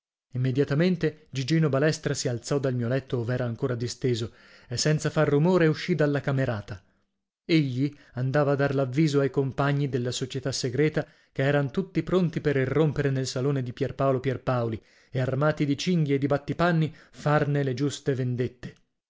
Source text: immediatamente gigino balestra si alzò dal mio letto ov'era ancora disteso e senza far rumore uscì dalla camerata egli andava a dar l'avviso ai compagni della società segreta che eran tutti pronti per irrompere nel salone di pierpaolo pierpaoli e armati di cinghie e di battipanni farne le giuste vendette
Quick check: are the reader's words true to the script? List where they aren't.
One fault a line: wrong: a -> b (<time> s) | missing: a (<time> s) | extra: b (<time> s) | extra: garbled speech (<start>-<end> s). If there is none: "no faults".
no faults